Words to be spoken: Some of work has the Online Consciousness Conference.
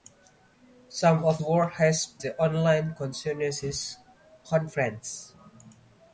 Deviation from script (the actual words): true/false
false